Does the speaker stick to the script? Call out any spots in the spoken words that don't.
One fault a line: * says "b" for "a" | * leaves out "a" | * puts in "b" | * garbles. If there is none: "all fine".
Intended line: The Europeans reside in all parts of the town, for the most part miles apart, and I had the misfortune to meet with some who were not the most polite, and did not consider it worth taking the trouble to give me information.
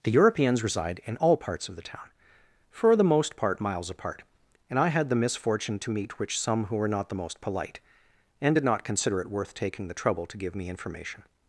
* says "which" for "with"